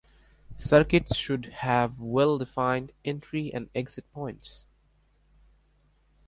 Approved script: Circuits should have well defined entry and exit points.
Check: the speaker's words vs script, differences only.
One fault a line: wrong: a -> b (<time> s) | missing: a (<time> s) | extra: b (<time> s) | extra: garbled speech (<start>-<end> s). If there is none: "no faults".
no faults